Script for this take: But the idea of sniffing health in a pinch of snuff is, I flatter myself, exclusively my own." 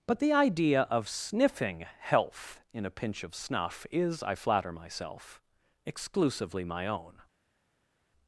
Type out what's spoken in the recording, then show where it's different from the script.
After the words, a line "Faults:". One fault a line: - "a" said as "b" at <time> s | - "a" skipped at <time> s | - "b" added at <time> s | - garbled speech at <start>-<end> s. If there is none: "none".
But the idea of sniffing health in a pinch of snuff is, I flatter myself, exclusively my own."
Faults:
none